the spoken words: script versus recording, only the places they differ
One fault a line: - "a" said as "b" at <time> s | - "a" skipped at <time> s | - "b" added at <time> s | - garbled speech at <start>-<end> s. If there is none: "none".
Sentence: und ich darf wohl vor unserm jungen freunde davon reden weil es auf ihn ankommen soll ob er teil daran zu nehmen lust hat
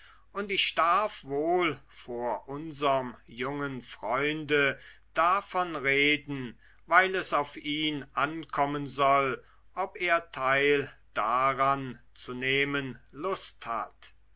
none